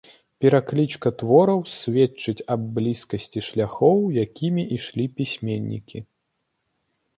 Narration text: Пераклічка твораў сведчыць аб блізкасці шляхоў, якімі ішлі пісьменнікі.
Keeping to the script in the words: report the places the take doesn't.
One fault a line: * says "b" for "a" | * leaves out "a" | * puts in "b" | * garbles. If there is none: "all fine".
all fine